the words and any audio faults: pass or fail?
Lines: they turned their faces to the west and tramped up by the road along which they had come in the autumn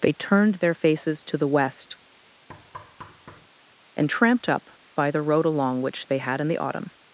fail